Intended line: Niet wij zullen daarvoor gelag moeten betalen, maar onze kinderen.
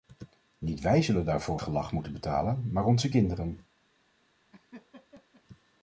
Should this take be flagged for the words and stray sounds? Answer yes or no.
yes